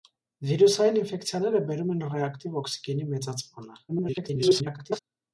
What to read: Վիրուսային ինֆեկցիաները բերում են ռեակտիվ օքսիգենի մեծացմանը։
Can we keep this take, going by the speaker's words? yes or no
no